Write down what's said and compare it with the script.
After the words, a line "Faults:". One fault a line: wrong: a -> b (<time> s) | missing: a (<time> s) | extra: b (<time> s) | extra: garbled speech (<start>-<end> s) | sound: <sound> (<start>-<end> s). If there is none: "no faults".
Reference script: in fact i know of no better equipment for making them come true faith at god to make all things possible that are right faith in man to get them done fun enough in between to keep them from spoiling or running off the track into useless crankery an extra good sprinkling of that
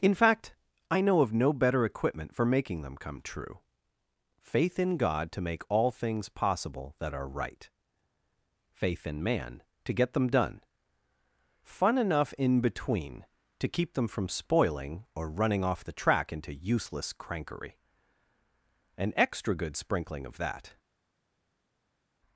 in fact i know of no better equipment for making them come true faith in god to make all things possible that are right faith in man to get them done fun enough in between to keep them from spoiling or running off the track into useless crankery an extra good sprinkling of that
Faults:
wrong: at -> in (4.8 s)